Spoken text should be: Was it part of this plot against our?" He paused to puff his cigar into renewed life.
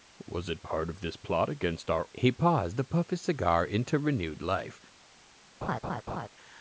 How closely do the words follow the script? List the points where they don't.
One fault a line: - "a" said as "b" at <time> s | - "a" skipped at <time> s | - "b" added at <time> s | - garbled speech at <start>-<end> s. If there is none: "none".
none